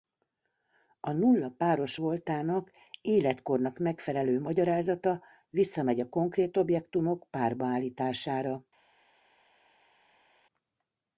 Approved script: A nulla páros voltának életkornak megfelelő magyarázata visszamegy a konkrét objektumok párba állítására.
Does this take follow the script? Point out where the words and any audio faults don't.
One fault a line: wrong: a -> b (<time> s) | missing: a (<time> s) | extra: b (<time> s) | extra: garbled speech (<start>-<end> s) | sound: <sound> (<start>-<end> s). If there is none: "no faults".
no faults